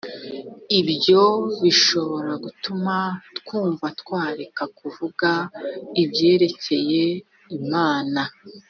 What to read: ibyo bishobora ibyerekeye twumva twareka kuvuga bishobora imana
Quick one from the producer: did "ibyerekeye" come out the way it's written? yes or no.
no